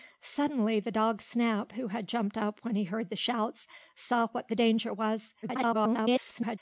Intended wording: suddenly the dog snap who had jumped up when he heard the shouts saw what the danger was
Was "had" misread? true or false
false